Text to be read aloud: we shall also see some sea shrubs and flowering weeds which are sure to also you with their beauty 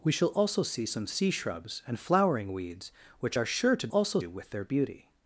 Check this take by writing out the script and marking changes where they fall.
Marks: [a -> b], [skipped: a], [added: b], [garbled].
we shall also see some sea shrubs and flowering weeds which are sure to also you with their beauty